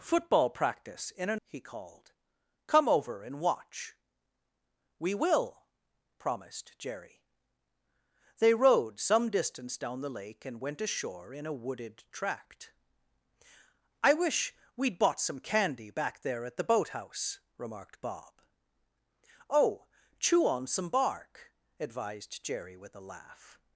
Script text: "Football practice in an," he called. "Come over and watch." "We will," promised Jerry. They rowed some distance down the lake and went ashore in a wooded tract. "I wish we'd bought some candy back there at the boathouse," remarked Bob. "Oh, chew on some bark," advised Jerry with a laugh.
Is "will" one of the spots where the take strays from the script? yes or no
no